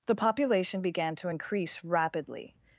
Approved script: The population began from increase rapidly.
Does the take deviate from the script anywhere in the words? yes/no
yes